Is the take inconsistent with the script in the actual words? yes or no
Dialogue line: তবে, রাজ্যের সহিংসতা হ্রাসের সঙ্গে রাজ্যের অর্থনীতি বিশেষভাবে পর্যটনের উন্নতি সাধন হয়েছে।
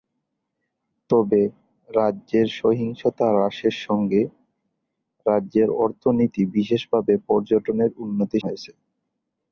yes